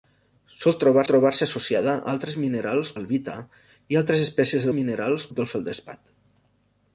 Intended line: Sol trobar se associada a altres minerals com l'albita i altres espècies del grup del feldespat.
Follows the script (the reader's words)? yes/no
no